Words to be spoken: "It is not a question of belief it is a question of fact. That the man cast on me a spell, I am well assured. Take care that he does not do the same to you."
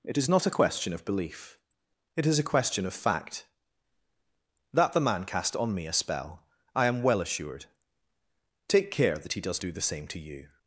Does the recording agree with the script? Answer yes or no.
no